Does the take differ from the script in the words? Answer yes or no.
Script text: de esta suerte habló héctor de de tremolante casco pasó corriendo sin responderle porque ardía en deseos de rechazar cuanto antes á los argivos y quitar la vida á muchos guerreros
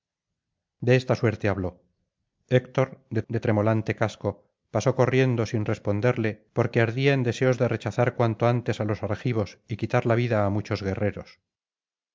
no